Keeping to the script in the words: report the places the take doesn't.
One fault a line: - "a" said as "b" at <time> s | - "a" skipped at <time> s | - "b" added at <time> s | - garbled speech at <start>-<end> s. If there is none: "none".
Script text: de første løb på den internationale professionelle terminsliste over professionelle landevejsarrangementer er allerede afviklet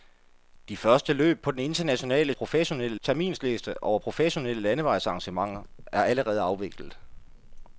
none